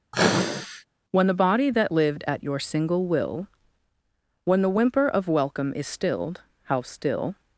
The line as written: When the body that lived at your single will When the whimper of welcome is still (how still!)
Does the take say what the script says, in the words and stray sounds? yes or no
no